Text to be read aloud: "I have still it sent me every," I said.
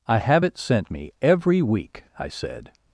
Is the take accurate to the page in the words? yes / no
no